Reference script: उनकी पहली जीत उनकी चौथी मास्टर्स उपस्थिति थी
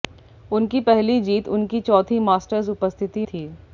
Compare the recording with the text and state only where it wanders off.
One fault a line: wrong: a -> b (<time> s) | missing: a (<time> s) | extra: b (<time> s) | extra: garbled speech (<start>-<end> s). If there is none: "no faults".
no faults